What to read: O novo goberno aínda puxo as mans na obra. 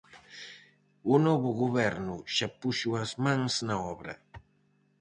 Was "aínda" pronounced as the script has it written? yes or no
no